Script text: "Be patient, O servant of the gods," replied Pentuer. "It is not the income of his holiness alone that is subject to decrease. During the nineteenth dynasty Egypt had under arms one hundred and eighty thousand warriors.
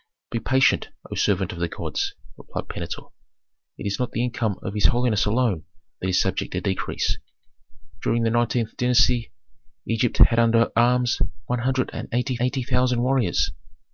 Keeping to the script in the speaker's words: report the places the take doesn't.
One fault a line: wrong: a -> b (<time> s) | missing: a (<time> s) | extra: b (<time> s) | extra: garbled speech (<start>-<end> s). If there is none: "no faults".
extra: eighty (12.4 s)